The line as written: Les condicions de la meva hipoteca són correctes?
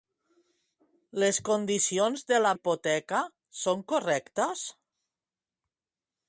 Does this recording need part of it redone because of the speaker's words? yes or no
yes